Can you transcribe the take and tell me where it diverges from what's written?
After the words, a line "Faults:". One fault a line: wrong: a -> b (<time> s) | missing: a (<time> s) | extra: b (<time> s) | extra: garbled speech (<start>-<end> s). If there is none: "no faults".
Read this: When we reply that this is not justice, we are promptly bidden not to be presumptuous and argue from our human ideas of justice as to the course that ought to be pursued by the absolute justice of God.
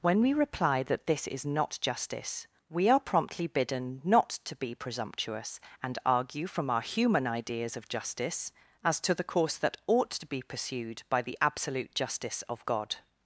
When we reply that this is not justice, we are promptly bidden not to be presumptuous and argue from our human ideas of justice as to the course that ought to be pursued by the absolute justice of God.
Faults:
no faults